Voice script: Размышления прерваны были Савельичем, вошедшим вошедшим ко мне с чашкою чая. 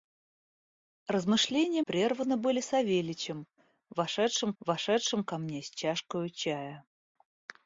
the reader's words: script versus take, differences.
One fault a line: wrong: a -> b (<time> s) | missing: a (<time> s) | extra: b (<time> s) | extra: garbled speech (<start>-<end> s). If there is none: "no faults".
no faults